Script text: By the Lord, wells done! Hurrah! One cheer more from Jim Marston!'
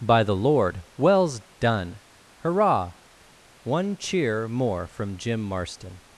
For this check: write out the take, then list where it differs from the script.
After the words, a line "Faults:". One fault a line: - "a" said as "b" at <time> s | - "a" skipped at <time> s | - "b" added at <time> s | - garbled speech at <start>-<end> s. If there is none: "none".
By the Lord, wells done! Hurrah! One cheer more from Jim Marston!'
Faults:
none